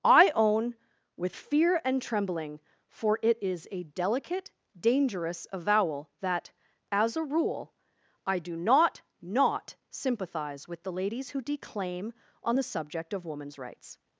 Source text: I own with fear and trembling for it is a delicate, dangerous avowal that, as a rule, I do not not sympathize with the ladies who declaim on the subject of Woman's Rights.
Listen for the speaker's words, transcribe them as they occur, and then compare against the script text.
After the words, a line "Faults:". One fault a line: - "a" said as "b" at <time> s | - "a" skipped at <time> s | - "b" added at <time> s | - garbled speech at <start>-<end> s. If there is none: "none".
I own with fear and trembling for it is a delicate, dangerous avowal that, as a rule, I do not not sympathize with the ladies who declaim on the subject of Woman's Rights.
Faults:
none